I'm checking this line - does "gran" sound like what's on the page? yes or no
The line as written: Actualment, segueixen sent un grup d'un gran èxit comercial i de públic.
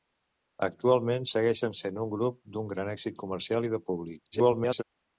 yes